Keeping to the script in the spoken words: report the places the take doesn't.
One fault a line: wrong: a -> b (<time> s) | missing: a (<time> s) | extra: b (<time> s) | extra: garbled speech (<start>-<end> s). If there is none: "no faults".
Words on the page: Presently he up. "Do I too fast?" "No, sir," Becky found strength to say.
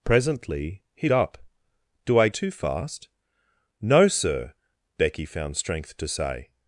no faults